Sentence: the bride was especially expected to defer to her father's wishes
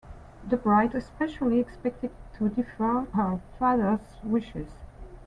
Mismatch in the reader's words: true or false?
true